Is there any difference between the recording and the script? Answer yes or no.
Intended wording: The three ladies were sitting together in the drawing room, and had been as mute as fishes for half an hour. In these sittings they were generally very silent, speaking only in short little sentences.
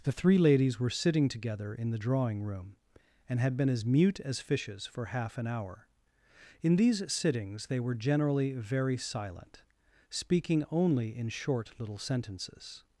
no